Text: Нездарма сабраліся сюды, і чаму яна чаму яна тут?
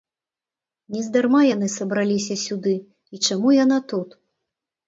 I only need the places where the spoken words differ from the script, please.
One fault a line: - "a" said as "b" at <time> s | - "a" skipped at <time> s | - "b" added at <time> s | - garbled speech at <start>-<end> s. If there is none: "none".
- "яны" added at 1.5 s
- "чаму яна" skipped at 3.8 s